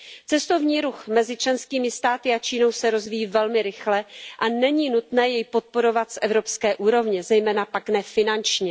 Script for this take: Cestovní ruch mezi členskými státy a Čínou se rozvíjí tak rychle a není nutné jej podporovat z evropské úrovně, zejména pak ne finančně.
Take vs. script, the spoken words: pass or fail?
fail